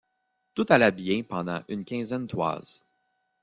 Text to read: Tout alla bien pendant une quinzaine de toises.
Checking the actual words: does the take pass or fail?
fail